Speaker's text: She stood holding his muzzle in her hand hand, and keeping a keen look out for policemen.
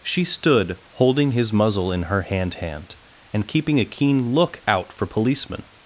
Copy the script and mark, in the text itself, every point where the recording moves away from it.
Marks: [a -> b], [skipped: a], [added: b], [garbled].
She stood holding his muzzle in her hand hand, and keeping a keen look out for policemen.